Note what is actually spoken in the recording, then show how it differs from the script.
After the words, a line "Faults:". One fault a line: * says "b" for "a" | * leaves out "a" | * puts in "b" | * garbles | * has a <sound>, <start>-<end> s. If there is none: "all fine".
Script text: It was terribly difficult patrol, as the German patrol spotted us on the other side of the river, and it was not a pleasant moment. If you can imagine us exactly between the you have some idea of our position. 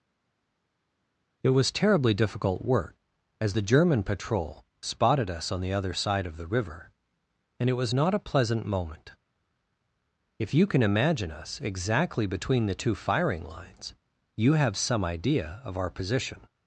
It was terribly difficult work, as the German patrol spotted us on the other side of the river, and it was not a pleasant moment. If you can imagine us exactly between the two firing lines, you have some idea of our position.
Faults:
* says "work" for "patrol"
* puts in "two firing lines"